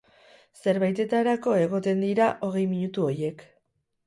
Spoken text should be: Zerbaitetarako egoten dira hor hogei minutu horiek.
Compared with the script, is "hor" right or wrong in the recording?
wrong